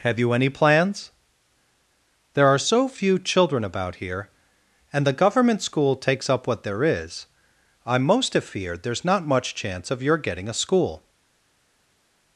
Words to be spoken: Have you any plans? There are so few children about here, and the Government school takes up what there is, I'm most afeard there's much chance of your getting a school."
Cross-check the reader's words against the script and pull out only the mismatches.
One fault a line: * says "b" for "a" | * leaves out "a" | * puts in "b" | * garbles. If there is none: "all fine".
* puts in "not"